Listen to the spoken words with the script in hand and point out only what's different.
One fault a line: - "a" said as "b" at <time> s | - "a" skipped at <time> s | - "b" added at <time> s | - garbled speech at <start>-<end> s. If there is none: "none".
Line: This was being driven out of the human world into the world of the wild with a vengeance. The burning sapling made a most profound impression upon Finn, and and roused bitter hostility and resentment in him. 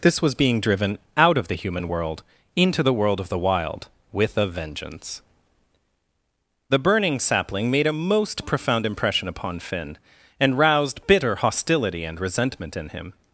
- "and" skipped at 10.6 s